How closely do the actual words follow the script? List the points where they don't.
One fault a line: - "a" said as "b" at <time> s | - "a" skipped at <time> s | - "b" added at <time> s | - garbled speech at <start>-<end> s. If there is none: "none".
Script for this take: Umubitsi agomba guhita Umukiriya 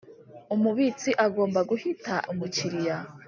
none